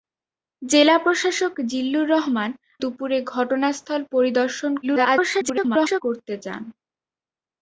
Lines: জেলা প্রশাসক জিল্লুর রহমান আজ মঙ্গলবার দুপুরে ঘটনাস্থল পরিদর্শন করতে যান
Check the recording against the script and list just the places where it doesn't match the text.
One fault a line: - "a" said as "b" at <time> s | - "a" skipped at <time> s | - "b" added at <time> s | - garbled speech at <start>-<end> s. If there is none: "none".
- "আজ মঙ্গলবার" skipped at 2.5 s
- garbled speech at 4.8-6.0 s